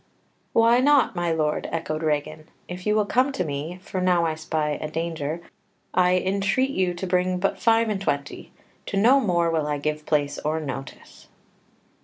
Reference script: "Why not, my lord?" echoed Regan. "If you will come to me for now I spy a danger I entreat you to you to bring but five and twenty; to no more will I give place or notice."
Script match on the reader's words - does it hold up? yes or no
no